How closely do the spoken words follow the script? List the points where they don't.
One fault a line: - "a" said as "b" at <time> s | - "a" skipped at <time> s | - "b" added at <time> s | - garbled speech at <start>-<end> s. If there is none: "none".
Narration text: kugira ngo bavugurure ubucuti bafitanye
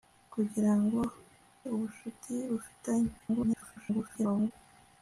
- "bavugurure" skipped at 1.0 s
- garbled speech at 3.2-4.5 s